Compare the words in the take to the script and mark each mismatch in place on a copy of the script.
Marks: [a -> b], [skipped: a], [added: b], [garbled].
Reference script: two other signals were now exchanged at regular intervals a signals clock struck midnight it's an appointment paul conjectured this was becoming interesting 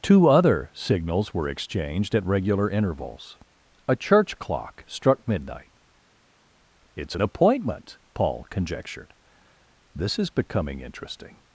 two other signals were [skipped: now] exchanged at regular intervals a [signals -> church] clock struck midnight it's an appointment paul conjectured this [was -> is] becoming interesting